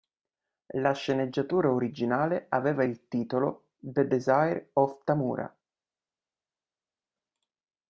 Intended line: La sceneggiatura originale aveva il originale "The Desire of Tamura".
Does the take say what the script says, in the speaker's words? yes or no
no